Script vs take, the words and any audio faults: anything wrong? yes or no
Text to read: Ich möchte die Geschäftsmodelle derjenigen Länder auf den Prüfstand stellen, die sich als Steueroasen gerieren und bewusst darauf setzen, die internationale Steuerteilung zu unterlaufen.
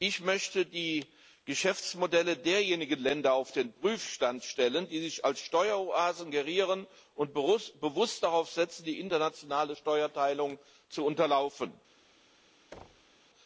yes